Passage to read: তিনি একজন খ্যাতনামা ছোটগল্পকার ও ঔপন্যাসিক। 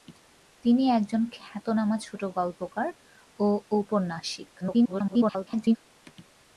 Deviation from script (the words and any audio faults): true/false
true